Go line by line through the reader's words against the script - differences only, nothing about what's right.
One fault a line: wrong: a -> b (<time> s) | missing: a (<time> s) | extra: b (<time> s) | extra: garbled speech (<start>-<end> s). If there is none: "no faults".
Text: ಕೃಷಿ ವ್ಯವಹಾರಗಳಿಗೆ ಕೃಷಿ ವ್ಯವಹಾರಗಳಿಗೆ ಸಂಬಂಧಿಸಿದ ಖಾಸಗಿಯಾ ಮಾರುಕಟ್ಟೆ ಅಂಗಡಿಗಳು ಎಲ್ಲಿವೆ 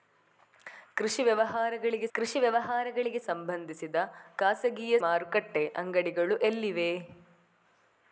no faults